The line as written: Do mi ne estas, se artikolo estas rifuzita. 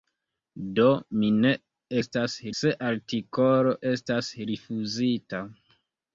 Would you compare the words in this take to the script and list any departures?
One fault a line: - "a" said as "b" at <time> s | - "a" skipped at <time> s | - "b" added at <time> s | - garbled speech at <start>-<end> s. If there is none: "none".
none